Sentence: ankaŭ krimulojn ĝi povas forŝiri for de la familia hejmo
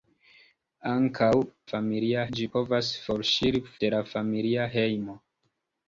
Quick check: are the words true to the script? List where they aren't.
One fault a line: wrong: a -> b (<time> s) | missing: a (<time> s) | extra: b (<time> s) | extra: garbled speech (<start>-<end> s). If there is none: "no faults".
wrong: krimulojn -> familia (1.7 s)
missing: for (3.6 s)